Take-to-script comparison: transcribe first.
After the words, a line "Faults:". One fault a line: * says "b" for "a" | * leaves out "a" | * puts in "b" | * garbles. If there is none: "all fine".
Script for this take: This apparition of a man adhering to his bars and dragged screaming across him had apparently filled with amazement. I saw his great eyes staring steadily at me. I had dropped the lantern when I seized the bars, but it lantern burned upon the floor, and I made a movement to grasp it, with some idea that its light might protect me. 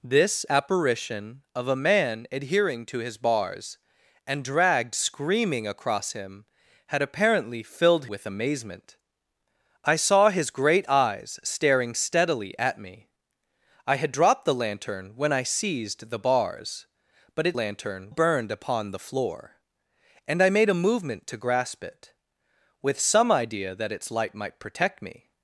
This apparition of a man adhering to his bars and dragged screaming across him had apparently filled with amazement. I saw his great eyes staring steadily at me. I had dropped the lantern when I seized the bars, but it lantern burned upon the floor, and I made a movement to grasp it, with some idea that its light might protect me.
Faults:
all fine